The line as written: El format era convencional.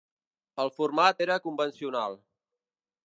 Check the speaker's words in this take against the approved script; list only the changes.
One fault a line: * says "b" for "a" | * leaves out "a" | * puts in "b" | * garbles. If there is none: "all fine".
all fine